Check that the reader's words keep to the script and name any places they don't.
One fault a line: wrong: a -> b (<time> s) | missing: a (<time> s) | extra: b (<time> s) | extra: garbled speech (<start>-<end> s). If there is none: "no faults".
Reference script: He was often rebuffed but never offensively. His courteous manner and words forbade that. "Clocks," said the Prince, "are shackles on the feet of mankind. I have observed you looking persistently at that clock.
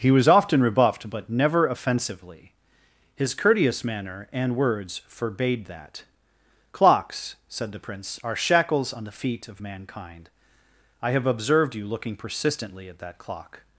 no faults